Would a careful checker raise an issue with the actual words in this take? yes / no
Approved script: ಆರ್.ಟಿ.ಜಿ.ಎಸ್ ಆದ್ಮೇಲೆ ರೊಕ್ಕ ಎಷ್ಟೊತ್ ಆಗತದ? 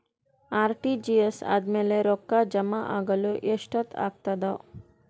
yes